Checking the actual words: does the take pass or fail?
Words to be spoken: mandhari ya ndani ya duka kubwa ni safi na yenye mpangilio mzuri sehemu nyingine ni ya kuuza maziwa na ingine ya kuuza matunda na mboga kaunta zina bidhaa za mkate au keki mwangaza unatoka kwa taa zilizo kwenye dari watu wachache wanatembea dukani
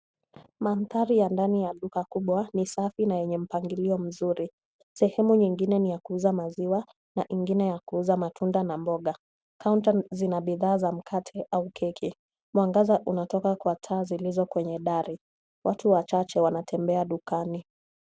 pass